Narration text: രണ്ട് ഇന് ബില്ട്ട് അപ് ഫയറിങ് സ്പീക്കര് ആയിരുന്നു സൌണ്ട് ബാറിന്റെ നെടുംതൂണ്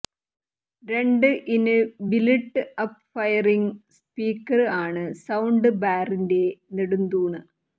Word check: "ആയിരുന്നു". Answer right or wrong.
wrong